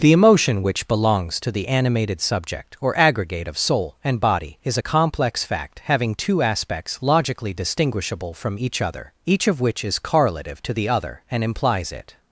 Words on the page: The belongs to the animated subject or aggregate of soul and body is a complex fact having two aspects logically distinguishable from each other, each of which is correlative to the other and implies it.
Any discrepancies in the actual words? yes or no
yes